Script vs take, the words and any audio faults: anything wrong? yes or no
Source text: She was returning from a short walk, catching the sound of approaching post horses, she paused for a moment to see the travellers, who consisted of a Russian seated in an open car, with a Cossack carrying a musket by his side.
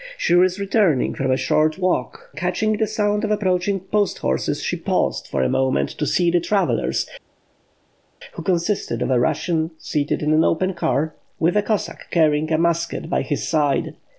no